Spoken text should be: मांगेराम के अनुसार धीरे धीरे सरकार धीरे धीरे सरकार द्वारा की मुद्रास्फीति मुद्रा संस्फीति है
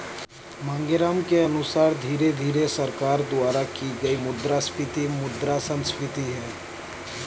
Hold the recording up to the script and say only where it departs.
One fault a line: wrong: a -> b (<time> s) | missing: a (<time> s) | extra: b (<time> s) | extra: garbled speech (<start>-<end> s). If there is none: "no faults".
missing: धीरे धीरे सरकार (3.2 s)
extra: गई (4.0 s)